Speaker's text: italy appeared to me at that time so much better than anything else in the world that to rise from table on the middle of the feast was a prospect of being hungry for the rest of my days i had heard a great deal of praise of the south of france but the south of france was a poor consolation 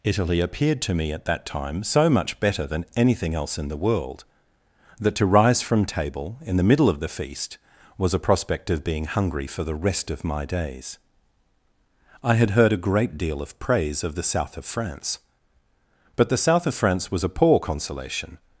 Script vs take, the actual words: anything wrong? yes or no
yes